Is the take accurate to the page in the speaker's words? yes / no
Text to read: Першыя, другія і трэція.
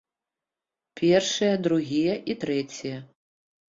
yes